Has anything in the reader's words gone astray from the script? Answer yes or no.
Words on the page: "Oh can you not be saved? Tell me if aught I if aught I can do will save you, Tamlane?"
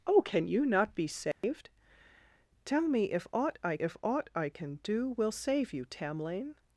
no